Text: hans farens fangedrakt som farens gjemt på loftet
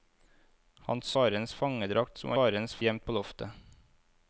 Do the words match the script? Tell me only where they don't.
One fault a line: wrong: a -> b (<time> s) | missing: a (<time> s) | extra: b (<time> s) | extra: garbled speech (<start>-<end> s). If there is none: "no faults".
no faults